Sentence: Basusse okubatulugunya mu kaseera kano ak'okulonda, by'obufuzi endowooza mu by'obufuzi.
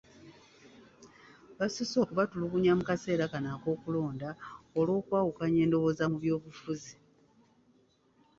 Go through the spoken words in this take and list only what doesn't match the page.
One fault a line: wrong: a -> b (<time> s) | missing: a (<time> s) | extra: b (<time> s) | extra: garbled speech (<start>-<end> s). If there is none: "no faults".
wrong: by'obufuzi -> olw'okwawukanya (4.8 s)